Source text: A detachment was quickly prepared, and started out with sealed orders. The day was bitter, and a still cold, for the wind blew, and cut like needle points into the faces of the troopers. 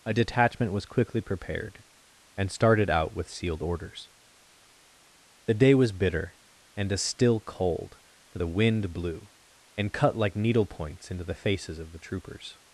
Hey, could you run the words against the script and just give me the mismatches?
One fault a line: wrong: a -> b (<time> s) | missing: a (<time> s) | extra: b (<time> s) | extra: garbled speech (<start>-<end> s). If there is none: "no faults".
no faults